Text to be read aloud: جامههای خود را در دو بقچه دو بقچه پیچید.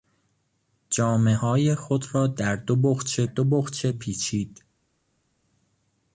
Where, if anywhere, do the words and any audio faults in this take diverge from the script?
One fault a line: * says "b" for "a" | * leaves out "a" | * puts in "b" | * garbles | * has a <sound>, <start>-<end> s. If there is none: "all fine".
all fine